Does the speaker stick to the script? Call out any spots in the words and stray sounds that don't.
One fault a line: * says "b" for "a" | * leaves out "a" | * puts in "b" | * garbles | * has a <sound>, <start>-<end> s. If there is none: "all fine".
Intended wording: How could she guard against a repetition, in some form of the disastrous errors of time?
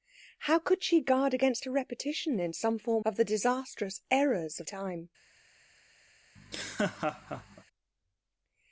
* has a laugh, 6.4-7.6 s